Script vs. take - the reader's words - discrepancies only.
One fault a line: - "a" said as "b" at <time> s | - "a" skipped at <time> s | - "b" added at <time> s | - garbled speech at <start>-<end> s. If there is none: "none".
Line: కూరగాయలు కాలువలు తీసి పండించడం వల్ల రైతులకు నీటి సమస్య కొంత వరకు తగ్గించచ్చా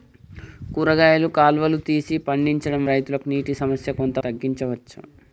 - "వల్ల" skipped at 2.9 s
- "వరకు" skipped at 4.2 s